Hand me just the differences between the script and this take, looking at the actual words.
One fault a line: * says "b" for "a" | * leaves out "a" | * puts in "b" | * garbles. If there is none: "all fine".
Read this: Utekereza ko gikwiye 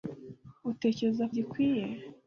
all fine